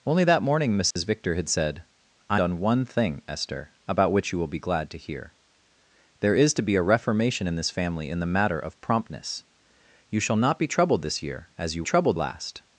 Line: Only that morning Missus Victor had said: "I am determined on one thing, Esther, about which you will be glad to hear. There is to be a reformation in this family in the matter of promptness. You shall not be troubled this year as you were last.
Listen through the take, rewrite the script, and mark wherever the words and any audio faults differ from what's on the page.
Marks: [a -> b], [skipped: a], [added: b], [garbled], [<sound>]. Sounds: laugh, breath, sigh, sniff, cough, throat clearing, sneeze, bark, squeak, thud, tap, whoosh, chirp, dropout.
Only that morning Missus [dropout] Victor had said: "I [skipped: am determined] on one thing, Esther, about which you will be glad to hear. There is to be a reformation in this family in the matter of promptness. You shall not be troubled this year as you [were -> troubled] last.